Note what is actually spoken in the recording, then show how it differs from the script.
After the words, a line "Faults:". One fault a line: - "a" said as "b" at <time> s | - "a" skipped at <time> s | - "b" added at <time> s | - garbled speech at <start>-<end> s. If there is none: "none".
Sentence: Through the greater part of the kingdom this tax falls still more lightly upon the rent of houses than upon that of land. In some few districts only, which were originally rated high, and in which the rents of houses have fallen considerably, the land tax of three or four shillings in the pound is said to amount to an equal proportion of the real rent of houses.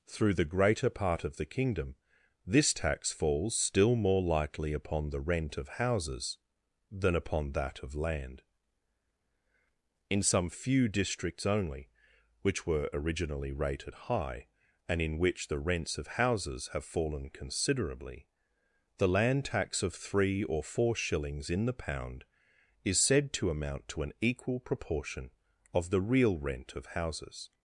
Through the greater part of the kingdom this tax falls still more lightly upon the rent of houses than upon that of land. In some few districts only, which were originally rated high, and in which the rents of houses have fallen considerably, the land tax of three or four shillings in the pound is said to amount to an equal proportion of the real rent of houses.
Faults:
none